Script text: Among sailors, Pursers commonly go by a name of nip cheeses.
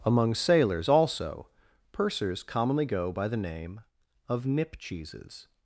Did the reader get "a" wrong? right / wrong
wrong